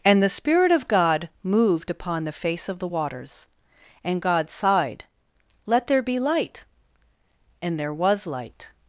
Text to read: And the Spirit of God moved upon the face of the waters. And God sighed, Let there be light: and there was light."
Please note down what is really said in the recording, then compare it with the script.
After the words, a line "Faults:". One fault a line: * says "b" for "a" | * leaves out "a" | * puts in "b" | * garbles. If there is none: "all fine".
And the Spirit of God moved upon the face of the waters. And God sighed, Let there be light: and there was light."
Faults:
all fine